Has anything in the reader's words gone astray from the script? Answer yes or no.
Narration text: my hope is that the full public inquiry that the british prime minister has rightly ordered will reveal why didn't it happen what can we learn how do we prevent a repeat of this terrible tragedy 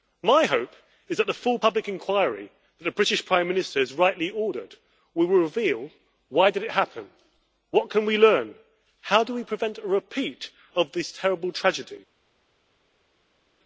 yes